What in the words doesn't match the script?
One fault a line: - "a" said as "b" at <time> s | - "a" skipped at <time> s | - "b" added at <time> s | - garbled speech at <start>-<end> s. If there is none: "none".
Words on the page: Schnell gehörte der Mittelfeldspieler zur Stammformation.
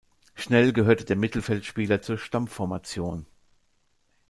none